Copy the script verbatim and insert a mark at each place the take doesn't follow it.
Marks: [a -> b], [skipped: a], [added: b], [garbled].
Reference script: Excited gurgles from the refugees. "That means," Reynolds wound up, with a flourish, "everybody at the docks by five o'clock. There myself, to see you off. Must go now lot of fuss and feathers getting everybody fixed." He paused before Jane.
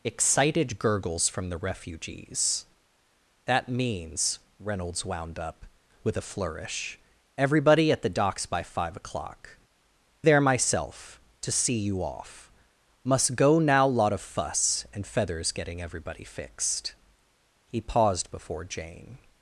Excited gurgles from the refugees. "That means," Reynolds wound up, with a flourish, "everybody at the docks by five o'clock. There myself, to see you off. Must go now lot of fuss and feathers getting everybody fixed." He paused before Jane.